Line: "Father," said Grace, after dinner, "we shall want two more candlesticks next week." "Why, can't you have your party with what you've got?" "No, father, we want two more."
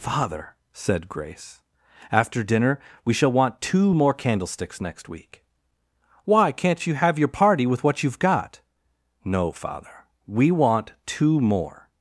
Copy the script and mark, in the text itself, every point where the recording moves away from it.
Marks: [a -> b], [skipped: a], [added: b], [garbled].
"Father," said Grace, after dinner, "we shall want two more candlesticks next week." "Why, can't you have your party with what you've got?" "No, father, we want two more."